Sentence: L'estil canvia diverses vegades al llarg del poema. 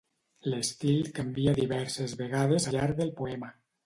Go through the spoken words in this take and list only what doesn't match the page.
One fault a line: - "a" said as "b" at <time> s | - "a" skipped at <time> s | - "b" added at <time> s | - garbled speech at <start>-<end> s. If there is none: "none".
- "al" skipped at 2.7 s